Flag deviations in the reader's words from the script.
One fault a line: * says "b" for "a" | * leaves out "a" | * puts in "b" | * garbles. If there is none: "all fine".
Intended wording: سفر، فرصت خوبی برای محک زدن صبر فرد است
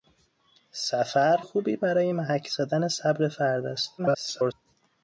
* leaves out "فرصت"
* garbles